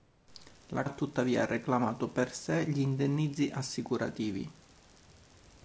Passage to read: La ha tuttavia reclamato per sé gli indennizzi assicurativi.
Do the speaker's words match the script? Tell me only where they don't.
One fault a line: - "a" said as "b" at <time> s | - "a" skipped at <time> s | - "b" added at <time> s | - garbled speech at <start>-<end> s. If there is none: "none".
none